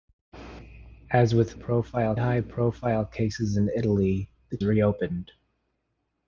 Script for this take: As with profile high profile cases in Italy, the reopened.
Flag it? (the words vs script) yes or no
no